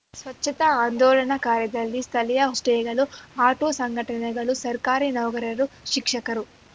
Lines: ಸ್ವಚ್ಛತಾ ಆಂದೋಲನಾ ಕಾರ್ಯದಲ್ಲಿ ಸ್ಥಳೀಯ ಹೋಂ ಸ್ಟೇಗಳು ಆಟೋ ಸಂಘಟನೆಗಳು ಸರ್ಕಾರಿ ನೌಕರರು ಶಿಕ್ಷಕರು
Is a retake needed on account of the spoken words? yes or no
yes